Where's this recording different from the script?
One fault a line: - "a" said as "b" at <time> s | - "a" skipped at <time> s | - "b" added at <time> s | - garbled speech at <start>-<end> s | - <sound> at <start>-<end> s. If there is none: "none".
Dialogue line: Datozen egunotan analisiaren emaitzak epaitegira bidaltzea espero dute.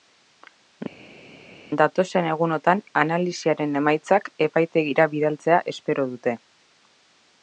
none